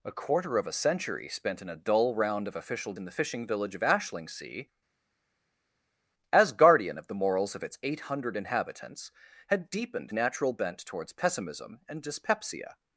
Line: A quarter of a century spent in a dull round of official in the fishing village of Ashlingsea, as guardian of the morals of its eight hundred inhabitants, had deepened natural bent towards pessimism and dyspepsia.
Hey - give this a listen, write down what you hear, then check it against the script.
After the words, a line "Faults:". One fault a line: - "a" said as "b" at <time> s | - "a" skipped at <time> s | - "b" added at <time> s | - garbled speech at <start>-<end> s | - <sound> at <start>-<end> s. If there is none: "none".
A quarter of a century spent in a dull round of official in the fishing village of Ashlingsea, as guardian of the morals of its eight hundred inhabitants, had deepened natural bent towards pessimism and dyspepsia.
Faults:
none